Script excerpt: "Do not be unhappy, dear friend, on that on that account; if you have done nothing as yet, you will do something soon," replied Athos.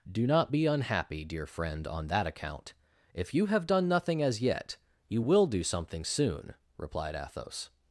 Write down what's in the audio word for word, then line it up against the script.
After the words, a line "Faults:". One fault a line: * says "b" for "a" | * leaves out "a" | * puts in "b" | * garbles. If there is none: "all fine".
"Do not be unhappy, dear friend, on that account; if you have done nothing as yet, you will do something soon," replied Athos.
Faults:
* leaves out "on that"